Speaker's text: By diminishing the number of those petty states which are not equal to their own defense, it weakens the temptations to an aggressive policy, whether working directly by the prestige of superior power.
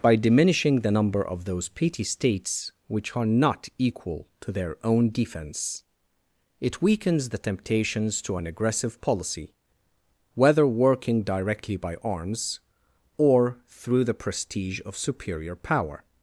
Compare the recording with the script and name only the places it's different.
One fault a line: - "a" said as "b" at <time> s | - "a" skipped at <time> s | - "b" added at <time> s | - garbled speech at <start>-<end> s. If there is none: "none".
- "arms or through" added at 12.0 s